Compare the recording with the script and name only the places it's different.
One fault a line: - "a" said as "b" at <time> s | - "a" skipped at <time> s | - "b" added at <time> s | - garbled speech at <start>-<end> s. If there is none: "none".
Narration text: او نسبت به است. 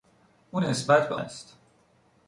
none